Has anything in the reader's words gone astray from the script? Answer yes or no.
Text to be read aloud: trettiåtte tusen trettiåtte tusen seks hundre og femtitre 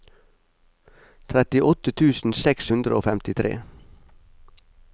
yes